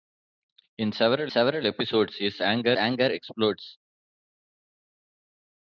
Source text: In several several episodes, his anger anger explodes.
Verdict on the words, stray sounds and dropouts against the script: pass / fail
pass